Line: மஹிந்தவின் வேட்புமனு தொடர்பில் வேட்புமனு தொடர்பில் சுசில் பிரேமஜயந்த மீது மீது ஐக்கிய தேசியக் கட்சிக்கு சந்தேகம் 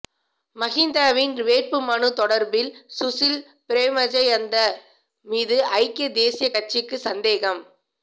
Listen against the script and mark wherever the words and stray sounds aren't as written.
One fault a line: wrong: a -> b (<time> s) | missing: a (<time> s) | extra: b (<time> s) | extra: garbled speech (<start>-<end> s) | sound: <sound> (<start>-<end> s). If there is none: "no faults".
missing: வேட்புமனு தொடர்பில் (2.7 s)
missing: மீது (5.6 s)